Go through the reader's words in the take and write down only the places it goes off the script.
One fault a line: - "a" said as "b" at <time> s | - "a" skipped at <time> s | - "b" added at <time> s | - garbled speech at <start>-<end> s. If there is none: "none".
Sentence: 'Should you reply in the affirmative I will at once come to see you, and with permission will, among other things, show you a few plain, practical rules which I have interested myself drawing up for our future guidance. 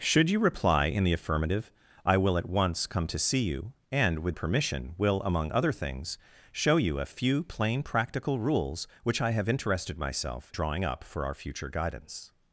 none